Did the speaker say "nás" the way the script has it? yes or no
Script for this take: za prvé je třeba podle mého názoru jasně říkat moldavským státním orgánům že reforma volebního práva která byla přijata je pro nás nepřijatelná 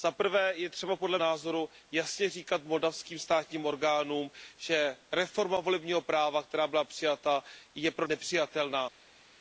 no